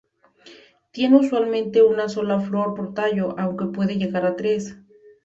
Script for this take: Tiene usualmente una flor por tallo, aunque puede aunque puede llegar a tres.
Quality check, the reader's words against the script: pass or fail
fail